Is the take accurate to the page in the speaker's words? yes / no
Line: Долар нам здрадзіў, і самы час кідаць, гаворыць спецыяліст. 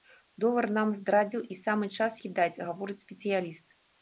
yes